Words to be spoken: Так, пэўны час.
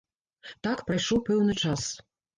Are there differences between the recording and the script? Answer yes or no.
yes